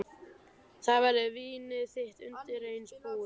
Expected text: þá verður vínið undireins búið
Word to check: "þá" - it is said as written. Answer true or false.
true